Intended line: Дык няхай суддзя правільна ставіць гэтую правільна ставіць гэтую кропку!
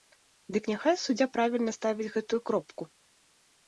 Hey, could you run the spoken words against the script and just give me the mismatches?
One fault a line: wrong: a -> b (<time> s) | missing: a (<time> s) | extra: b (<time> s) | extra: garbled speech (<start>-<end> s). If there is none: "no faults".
missing: правільна ставіць гэтую (2.4 s)